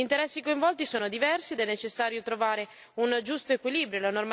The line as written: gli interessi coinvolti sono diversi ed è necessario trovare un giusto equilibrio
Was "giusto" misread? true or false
false